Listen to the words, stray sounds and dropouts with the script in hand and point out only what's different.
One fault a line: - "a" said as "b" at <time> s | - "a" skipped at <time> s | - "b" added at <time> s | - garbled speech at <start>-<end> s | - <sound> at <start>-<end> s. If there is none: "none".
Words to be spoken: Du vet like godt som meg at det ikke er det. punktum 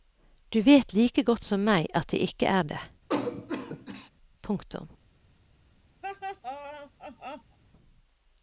- cough at 3.1-4.1 s
- laugh at 6.0-7.6 s